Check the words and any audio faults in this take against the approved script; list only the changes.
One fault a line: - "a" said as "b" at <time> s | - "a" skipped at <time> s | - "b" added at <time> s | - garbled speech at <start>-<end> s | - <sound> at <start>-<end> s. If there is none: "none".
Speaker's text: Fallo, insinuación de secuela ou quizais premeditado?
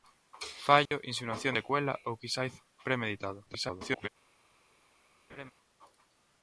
- dropout at 0.9-0.9 s
- "de" skipped at 1.5 s
- garbled speech at 3.5-4.1 s
- laugh at 5.3-5.5 s